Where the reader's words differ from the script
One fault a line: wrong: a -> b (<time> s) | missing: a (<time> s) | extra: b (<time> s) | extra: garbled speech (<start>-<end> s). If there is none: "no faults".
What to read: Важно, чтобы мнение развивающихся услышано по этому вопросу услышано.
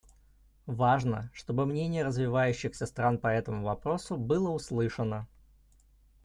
wrong: услышано -> стран (2.8 s)
extra: было (4.1 s)